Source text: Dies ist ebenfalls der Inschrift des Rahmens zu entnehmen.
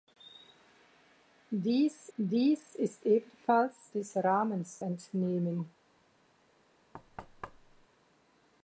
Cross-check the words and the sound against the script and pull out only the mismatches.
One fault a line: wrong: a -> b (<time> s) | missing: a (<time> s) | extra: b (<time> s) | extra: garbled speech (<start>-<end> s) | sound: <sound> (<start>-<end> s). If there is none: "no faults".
extra: dies (2.2 s)
missing: der Inschrift (3.9 s)
missing: zu (4.8 s)
sound: thud (6.9-7.9 s)